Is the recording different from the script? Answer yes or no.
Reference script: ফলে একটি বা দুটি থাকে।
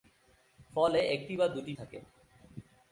no